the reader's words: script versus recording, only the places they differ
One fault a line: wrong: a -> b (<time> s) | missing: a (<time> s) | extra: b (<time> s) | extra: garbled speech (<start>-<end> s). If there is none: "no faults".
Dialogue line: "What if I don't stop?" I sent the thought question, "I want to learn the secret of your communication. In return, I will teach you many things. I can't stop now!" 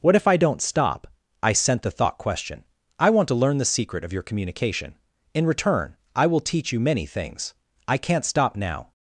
no faults